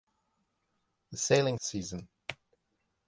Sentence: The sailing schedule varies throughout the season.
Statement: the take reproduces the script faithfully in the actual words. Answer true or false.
false